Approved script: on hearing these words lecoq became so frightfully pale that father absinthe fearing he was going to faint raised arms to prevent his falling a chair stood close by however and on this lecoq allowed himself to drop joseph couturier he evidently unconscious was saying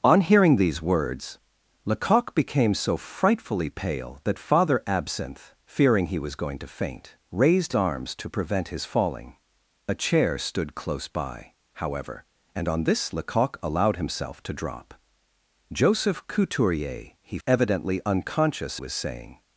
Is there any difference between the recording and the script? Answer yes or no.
no